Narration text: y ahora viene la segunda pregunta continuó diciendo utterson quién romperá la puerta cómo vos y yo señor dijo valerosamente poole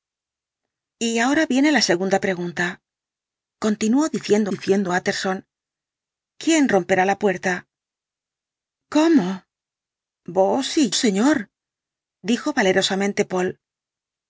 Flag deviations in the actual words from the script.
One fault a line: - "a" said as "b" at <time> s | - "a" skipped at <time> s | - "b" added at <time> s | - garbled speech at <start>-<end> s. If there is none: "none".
- "diciendo" added at 4.5 s
- "yo" skipped at 10.9 s